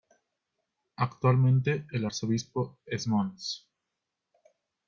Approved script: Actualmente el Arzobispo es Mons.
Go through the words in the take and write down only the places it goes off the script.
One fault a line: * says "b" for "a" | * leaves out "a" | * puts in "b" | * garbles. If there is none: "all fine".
all fine